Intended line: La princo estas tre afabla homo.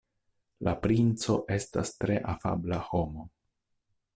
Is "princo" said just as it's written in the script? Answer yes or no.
yes